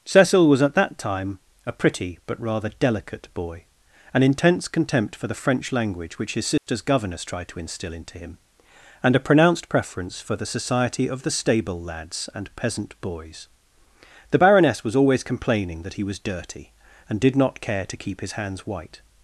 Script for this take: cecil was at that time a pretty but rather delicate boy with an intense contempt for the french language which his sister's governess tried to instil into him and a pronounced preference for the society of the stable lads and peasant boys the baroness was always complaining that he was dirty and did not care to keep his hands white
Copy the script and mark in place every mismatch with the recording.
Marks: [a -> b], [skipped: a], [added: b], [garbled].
cecil was at that time a pretty but rather delicate boy [skipped: with] an intense contempt for the french language which his sister's governess tried to instil into him and a pronounced preference for the society of the stable lads and peasant boys the baroness was always complaining that he was dirty and did not care to keep his hands white